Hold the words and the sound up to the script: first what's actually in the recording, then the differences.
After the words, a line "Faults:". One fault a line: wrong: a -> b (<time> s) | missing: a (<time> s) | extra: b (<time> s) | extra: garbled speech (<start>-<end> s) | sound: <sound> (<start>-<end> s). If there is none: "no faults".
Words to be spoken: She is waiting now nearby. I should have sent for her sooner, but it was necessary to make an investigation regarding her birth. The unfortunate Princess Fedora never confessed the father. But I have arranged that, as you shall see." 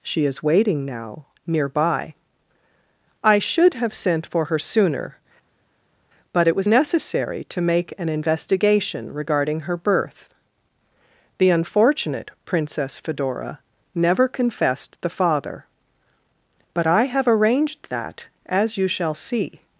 She is waiting now nearby. I should have sent for her sooner, but it was necessary to make an investigation regarding her birth. The unfortunate Princess Fedora never confessed the father. But I have arranged that, as you shall see."
Faults:
no faults